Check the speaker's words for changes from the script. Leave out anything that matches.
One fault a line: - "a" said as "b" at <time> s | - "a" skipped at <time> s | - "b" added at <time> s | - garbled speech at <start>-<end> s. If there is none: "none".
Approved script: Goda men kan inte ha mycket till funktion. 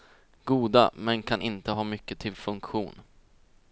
none